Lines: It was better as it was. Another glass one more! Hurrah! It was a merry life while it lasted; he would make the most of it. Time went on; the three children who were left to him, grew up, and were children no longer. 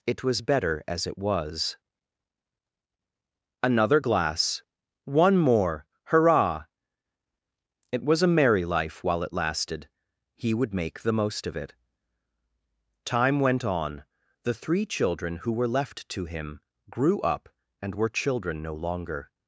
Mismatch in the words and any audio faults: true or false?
false